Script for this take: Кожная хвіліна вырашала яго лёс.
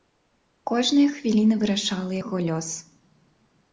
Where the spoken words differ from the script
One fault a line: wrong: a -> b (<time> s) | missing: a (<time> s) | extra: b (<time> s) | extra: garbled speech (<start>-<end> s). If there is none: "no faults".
no faults